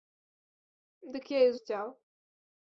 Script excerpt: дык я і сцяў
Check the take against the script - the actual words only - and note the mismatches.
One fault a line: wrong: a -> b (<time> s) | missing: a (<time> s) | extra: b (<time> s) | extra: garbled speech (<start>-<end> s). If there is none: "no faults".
no faults